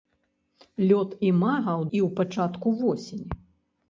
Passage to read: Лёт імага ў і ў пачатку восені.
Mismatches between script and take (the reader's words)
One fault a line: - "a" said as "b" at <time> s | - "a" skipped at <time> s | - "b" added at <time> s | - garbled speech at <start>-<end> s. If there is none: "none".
none